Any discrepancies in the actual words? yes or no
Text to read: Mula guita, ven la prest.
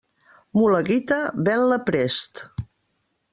no